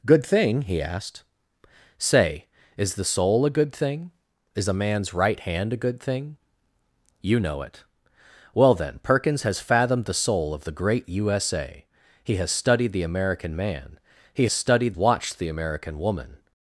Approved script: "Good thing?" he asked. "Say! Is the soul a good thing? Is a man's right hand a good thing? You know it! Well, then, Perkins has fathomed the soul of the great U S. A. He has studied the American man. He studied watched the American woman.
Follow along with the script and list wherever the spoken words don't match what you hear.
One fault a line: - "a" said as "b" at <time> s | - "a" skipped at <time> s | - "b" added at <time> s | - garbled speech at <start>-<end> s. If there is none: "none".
none